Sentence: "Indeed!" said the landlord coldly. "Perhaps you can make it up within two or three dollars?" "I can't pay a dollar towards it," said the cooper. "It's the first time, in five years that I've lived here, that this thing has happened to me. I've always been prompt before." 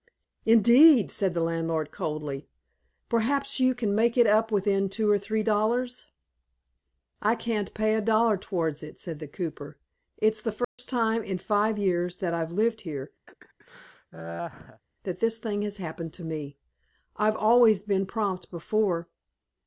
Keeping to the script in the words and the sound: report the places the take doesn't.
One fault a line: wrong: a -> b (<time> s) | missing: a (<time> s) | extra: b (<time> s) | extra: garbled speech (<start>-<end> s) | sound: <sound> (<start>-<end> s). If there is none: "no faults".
sound: dropout (10.6-10.8 s)
sound: laugh (13.3-14.8 s)